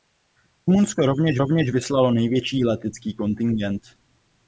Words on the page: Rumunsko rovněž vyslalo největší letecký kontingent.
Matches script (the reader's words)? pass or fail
fail